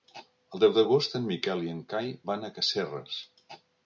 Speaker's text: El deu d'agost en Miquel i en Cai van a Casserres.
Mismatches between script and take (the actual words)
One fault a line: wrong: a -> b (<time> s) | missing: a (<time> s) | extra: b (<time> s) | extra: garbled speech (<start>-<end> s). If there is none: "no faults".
no faults